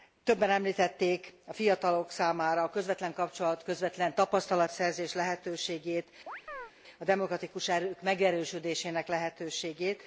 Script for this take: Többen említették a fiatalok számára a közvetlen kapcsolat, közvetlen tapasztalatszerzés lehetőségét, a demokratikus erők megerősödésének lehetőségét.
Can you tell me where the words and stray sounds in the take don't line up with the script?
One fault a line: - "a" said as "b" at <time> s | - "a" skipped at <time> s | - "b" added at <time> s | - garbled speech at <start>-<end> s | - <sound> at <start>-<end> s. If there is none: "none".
- chirp at 6.3-6.7 s